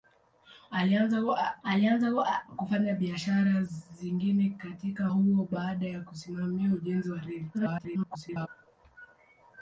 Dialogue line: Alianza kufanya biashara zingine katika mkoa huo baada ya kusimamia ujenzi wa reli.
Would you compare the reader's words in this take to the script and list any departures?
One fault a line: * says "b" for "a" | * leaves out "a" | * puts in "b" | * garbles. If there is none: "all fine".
* puts in "alianza"
* leaves out "mkoa"
* garbles